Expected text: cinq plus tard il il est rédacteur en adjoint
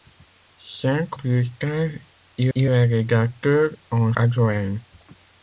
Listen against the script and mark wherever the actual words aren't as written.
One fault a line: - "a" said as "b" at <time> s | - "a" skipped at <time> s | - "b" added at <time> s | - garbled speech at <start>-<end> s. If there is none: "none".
none